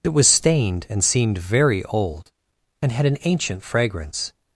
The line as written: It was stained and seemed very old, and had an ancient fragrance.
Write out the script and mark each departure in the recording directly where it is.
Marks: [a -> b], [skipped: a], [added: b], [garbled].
It was stained and seemed very old, and had an ancient fragrance.